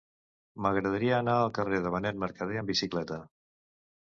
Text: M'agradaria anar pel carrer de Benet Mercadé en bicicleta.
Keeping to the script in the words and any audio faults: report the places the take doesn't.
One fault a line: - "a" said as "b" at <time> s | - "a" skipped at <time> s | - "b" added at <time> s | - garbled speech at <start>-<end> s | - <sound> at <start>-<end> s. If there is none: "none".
- "pel" said as "al" at 1.4 s
- "en" said as "amb" at 2.6 s